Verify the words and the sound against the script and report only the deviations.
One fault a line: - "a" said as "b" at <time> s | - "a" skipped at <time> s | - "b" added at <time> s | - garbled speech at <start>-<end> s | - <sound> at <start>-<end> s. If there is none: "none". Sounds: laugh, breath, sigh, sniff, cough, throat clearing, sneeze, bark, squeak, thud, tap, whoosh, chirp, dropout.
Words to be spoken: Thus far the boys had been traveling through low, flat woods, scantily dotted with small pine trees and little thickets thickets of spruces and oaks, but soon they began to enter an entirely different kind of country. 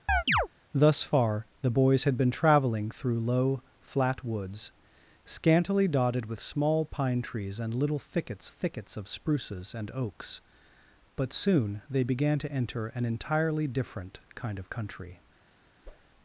- chirp at 0.1-0.5 s
- whoosh at 15.8-16.1 s